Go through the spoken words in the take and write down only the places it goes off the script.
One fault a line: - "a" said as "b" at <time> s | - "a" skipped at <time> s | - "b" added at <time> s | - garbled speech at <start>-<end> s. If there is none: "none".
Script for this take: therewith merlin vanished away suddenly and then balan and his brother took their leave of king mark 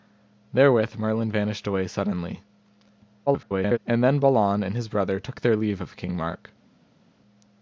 - garbled speech at 3.3-3.8 s